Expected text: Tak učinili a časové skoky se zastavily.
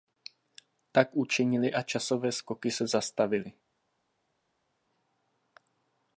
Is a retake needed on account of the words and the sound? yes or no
no